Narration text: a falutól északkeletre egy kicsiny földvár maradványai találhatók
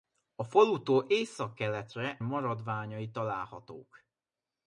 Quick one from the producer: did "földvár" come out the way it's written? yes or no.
no